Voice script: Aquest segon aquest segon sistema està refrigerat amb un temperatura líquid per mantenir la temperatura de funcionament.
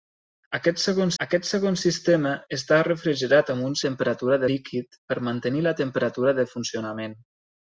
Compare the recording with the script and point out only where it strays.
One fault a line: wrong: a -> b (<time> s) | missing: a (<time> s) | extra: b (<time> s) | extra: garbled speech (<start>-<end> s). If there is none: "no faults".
no faults